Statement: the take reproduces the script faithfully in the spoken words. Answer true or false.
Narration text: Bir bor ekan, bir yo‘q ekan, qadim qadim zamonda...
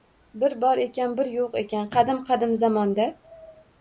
true